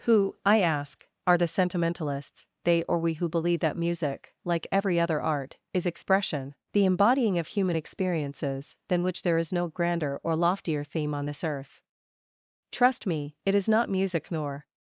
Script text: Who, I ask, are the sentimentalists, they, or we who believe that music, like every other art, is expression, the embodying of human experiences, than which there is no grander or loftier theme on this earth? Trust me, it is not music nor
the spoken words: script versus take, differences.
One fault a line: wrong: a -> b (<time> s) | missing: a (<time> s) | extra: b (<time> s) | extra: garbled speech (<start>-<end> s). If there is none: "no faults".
no faults